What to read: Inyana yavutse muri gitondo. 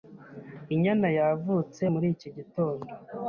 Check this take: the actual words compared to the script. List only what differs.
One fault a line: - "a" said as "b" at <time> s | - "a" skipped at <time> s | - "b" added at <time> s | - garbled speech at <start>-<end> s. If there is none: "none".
- "iki" added at 2.1 s